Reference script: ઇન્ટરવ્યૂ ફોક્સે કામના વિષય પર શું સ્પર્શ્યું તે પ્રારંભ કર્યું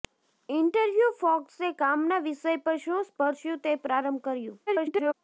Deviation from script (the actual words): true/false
true